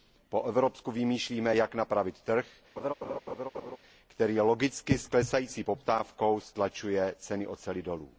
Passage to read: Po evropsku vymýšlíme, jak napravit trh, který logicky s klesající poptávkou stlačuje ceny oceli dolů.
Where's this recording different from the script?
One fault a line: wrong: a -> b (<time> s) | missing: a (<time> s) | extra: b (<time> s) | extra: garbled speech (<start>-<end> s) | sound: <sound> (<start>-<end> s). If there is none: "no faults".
sound: laugh (2.8-3.8 s)